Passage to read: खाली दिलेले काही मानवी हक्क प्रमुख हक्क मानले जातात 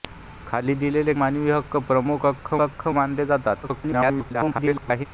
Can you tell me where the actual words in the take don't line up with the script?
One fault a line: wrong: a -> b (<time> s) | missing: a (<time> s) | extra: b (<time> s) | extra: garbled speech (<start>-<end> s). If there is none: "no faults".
missing: काही (1.1 s)
extra: हक्क (2.6 s)
extra: garbled speech (3.6-5.1 s)